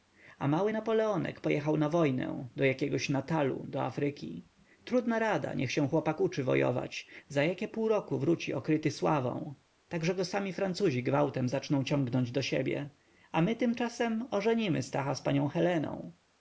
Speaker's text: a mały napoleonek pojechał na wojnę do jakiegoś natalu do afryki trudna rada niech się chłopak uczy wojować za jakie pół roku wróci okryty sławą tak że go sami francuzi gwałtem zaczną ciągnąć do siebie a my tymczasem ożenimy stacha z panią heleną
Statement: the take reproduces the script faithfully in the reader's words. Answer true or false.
true